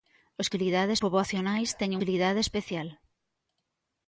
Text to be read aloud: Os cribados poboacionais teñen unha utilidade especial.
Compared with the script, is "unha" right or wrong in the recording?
wrong